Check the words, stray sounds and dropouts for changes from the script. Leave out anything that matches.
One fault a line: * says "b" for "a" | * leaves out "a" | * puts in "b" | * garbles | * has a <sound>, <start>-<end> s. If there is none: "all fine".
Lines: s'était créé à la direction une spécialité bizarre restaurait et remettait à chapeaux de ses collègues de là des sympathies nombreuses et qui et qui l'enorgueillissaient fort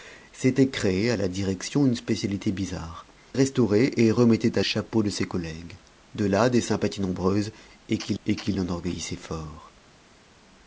all fine